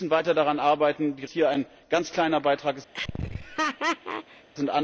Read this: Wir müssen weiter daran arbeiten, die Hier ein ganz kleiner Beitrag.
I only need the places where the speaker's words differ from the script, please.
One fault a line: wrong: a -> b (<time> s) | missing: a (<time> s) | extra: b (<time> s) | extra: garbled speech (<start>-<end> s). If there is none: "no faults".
no faults